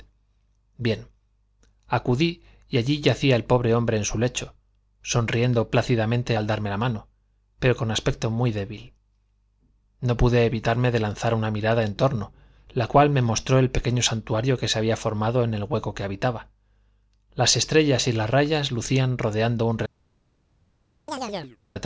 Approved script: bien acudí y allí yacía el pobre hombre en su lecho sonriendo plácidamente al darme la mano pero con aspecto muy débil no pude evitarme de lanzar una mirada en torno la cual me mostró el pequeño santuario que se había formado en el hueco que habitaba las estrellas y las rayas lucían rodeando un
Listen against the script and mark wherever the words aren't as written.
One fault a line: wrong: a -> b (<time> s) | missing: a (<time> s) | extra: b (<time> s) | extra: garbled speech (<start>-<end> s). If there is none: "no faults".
no faults